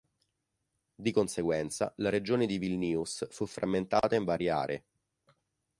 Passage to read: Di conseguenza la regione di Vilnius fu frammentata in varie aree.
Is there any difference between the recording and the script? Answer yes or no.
no